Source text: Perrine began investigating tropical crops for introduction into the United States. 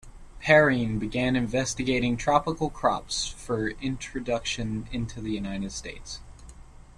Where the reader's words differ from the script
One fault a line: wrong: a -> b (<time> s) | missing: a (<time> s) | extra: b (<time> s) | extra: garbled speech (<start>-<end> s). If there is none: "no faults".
no faults